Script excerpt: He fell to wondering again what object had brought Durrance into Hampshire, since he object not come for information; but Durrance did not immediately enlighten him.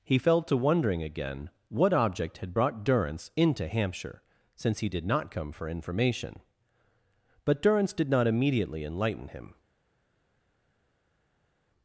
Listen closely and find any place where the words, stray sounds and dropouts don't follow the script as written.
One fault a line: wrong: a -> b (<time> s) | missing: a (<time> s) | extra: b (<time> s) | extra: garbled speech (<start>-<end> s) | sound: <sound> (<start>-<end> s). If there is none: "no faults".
wrong: object -> did (4.9 s)